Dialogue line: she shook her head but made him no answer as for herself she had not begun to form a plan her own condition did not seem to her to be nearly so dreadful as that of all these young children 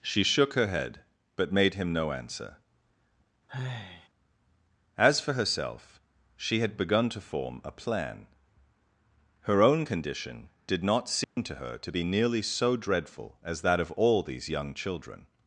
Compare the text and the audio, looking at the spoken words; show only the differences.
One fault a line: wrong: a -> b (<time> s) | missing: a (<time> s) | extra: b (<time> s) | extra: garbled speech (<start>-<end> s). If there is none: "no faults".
missing: not (6.8 s)